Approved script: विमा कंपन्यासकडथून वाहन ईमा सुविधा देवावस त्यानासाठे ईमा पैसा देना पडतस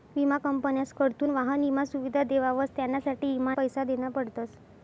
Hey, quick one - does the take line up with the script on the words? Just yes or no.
yes